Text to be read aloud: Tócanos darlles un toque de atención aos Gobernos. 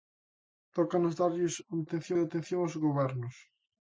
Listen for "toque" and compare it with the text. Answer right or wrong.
wrong